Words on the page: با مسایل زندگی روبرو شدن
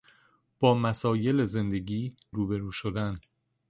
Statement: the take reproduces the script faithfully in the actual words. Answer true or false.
true